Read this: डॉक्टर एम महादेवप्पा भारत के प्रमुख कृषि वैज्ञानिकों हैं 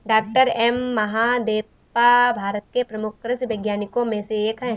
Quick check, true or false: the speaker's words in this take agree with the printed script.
false